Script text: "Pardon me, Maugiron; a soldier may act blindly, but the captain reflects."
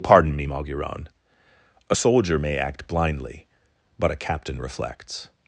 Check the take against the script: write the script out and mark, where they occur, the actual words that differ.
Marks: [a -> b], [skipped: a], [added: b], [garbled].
"Pardon me, Maugiron; a soldier may act blindly, but [the -> a] captain reflects."